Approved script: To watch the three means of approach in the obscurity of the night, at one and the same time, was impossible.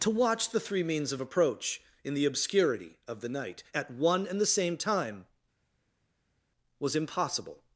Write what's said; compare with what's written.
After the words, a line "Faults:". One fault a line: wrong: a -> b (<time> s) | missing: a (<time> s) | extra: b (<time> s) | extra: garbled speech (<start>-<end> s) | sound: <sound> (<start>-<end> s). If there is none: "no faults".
To watch the three means of approach in the obscurity of the night, at one and the same time, was impossible.
Faults:
no faults